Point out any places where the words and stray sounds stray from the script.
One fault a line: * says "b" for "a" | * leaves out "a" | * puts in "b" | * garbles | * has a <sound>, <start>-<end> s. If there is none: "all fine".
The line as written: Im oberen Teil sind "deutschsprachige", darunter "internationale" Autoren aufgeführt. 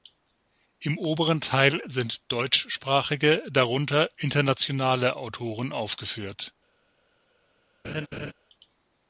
* has a laugh, 7.8-8.3 s